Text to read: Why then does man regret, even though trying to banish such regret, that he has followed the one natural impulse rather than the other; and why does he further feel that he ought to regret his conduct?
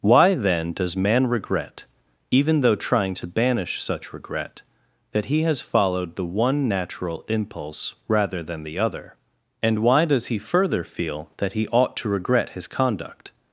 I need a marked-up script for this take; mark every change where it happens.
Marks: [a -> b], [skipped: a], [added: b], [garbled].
Why then does man regret, even though trying to banish such regret, that he has followed the one natural impulse rather than the other; and why does he further feel that he ought to regret his conduct?